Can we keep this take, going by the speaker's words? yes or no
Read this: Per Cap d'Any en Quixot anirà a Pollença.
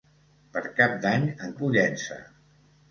no